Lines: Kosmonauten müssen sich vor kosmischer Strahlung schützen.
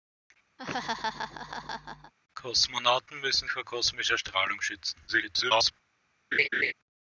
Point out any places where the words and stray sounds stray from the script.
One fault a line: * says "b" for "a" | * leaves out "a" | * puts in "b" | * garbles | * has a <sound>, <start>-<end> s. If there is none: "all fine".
* has a laugh, 0.6-2.1 s
* leaves out "sich"
* garbles
* has a laugh, 6.3-6.7 s